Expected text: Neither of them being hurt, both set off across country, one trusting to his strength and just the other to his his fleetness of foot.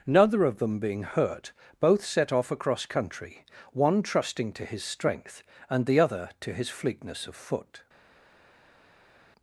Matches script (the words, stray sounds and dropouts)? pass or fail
fail